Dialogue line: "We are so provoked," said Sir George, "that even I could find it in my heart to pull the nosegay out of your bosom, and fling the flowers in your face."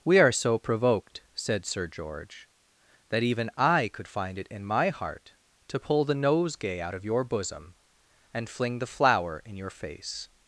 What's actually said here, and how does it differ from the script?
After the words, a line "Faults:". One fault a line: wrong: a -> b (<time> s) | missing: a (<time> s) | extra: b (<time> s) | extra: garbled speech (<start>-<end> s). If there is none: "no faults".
"We are so provoked," said Sir George, "that even I could find it in my heart to pull the nosegay out of your bosom, and fling the flower in your face."
Faults:
wrong: flowers -> flower (8.9 s)